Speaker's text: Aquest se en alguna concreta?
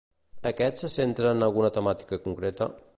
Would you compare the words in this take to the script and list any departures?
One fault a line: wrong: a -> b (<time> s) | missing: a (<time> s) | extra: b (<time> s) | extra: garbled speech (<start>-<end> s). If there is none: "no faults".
extra: centra (0.9 s)
extra: temàtica (1.8 s)